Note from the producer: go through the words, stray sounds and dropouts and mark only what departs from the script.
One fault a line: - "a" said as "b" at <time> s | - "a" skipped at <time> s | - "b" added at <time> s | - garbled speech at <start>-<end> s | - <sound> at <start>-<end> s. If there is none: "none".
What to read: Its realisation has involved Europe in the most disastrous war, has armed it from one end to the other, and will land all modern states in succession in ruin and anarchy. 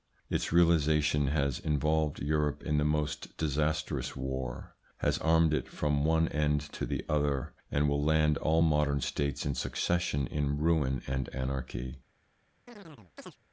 - chirp at 12.7-13.4 s